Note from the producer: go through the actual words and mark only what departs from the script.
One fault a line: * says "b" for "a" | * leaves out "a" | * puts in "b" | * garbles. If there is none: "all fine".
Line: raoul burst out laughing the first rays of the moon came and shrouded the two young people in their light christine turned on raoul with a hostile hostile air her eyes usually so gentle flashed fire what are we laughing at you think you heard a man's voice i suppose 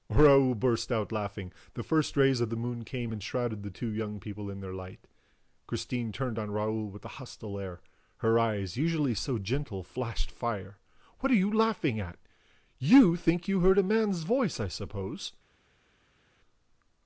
* leaves out "hostile"
* says "you" for "we"